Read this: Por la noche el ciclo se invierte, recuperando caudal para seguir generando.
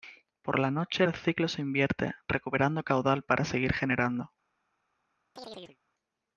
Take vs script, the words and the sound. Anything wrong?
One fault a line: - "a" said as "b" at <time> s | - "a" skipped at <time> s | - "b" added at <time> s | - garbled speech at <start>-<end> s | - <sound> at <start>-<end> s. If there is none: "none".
- chirp at 5.4-5.8 s